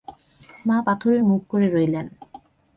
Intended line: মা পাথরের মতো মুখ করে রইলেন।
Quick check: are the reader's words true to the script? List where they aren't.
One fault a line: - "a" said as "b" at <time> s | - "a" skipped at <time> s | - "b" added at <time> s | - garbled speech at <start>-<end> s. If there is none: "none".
- "মতো" skipped at 1.2 s